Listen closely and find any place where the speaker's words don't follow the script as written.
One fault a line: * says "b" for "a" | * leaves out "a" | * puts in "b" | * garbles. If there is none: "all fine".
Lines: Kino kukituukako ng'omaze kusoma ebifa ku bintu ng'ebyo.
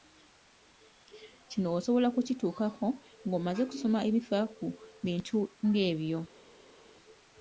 * puts in "osobola"